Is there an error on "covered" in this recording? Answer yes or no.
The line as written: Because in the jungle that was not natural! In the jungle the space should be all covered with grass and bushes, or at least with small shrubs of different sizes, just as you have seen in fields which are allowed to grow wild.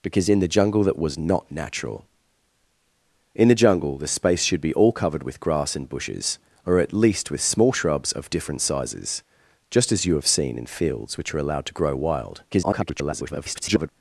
no